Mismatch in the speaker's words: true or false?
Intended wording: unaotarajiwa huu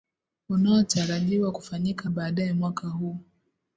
true